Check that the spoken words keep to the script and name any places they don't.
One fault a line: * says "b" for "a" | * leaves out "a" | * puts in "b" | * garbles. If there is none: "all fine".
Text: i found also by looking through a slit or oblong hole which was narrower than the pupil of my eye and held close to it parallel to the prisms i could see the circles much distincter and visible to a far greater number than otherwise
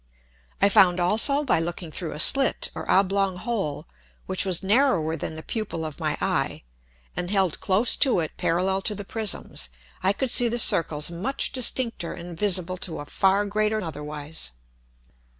* leaves out "number than"